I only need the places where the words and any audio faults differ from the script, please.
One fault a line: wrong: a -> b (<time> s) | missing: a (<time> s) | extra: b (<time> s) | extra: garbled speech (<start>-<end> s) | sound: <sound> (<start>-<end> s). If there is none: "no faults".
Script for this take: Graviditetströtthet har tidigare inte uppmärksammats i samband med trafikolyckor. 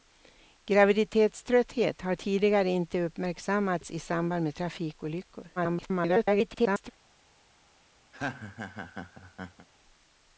extra: garbled speech (5.6-6.9 s)
sound: laugh (8.1-9.7 s)